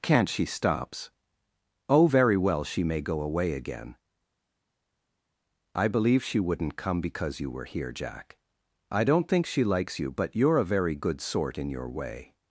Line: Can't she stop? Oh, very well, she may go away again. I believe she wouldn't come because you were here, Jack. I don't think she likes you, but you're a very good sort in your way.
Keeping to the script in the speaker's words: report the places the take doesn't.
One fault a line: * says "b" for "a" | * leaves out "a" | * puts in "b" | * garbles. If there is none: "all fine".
* says "stops" for "stop"